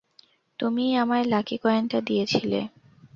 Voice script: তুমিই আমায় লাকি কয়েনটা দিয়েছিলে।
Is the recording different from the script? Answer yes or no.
no